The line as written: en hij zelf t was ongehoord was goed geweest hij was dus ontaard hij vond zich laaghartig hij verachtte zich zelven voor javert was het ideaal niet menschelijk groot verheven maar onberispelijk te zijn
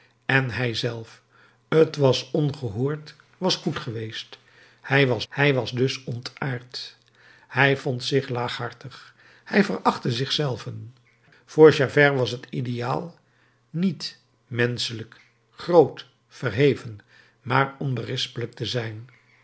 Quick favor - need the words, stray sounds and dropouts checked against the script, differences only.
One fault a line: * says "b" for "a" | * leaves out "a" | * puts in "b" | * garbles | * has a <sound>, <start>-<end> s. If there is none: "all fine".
* puts in "hij was"